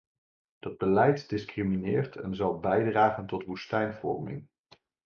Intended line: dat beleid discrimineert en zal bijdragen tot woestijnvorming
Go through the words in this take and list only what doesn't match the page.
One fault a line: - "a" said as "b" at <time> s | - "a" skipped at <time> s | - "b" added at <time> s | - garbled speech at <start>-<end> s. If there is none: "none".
none